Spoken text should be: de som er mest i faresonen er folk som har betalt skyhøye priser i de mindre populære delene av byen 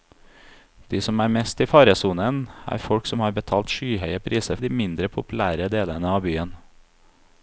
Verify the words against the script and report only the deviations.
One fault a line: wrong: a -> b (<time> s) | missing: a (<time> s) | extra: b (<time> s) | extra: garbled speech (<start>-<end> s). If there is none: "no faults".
no faults